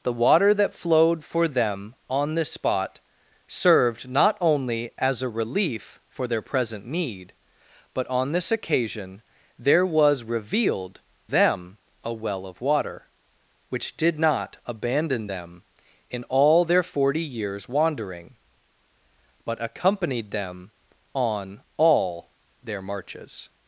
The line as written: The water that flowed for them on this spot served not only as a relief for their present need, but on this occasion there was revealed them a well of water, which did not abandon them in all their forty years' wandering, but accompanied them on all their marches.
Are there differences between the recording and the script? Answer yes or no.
no